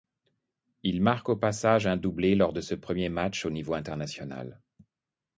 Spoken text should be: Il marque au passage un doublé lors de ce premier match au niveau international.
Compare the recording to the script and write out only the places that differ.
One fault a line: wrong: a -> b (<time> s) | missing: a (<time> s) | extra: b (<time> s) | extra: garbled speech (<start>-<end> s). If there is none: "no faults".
no faults